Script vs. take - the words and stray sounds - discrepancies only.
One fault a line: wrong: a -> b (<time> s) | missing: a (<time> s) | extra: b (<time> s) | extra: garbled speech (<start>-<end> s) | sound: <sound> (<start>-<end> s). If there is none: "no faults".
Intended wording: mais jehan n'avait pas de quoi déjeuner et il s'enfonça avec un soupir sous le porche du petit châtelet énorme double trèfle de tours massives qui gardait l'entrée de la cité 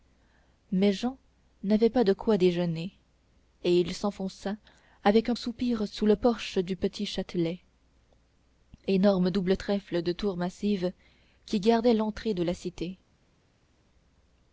no faults